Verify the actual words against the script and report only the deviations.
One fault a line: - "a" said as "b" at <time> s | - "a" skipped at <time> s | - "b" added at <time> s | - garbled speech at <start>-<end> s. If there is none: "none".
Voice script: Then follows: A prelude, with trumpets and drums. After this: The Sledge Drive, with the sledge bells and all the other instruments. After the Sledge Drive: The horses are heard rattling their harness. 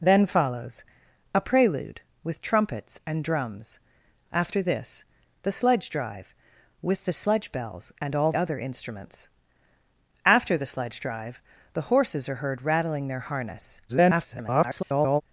- "the" skipped at 8.3 s
- garbled speech at 13.9-15.2 s